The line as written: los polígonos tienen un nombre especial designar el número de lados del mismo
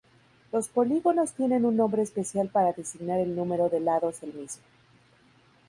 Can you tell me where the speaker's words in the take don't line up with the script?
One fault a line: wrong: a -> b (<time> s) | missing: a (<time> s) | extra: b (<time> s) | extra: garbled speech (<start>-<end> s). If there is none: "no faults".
extra: para (2.5 s)